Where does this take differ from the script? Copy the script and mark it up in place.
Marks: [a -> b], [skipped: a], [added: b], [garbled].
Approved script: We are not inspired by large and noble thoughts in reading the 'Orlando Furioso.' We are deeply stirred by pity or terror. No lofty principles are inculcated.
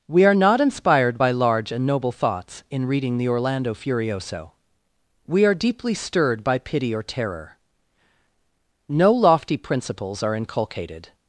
We are not inspired by large and noble thoughts in reading the 'Orlando Furioso.' We are deeply stirred by pity or terror. No lofty principles are inculcated.